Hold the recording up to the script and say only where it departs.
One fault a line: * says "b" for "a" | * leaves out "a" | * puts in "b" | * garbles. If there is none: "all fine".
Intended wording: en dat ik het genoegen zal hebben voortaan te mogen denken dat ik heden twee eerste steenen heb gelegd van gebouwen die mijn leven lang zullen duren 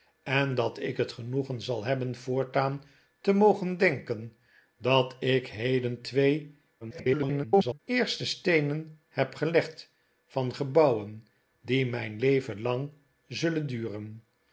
* garbles